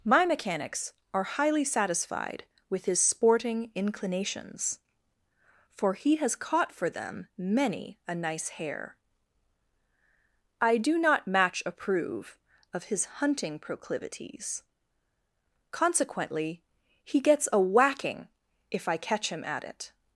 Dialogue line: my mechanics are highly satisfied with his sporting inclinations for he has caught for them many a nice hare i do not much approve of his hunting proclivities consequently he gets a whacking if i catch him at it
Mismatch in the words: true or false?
true